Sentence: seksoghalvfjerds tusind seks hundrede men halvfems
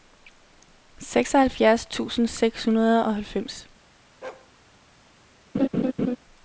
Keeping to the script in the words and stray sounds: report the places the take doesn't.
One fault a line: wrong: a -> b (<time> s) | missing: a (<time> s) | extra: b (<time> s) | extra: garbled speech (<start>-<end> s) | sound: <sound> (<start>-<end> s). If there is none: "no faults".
wrong: men -> og (3.0 s)
sound: bark (4.2-4.5 s)
sound: laugh (5.5-6.2 s)